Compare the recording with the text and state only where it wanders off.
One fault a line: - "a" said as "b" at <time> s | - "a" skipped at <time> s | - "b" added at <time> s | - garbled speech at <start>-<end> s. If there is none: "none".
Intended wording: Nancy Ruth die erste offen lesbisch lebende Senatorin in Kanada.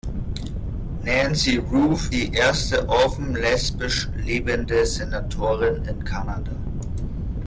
none